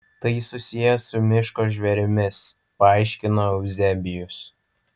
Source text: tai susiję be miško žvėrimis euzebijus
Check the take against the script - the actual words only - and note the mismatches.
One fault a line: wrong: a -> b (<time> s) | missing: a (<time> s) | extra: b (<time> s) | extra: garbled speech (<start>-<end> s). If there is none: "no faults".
wrong: be -> su (1.1 s)
extra: paaiškino (2.9 s)